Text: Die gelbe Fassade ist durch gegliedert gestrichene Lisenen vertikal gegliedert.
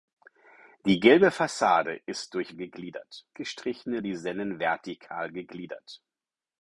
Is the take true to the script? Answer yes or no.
yes